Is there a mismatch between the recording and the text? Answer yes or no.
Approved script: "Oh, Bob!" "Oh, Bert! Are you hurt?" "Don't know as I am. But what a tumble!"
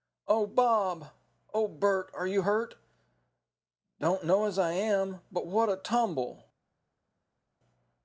no